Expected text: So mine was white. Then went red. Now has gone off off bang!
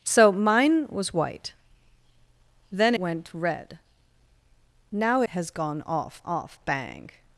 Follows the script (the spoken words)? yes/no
yes